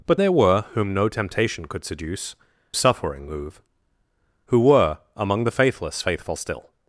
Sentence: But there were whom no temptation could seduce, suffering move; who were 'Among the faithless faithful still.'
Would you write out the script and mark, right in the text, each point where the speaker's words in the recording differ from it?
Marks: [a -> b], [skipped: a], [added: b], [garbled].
But there were whom no temptation could seduce, suffering move; who were 'Among the faithless faithful still.'